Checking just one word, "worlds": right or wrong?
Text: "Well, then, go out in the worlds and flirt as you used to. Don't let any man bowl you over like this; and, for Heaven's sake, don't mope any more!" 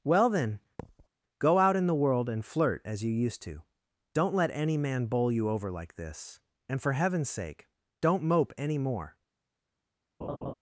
wrong